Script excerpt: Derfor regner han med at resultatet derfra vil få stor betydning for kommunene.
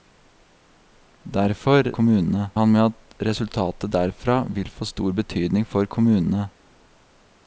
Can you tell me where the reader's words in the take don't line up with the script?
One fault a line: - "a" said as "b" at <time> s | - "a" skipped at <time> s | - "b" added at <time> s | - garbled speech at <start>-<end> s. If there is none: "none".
- "regner" said as "kommunene" at 2.0 s